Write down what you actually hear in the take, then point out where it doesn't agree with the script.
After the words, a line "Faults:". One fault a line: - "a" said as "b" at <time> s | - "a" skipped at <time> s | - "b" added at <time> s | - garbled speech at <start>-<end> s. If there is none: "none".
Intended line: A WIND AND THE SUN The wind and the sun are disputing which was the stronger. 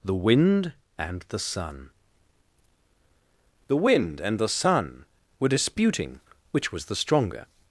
THE WIND AND THE SUN The wind and the sun were disputing which was the stronger.
Faults:
- "A" said as "THE" at 0.0 s
- "are" said as "were" at 5.4 s